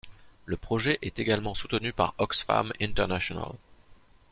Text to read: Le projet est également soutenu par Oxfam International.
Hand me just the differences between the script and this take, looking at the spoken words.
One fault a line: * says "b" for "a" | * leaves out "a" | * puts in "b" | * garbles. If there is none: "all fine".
all fine